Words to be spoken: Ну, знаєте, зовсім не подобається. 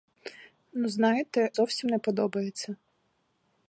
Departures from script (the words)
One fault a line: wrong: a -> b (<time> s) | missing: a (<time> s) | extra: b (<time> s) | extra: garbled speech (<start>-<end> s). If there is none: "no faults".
no faults